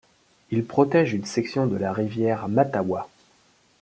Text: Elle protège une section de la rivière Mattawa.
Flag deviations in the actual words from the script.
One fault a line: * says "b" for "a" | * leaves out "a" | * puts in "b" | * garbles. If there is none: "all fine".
* says "Il" for "Elle"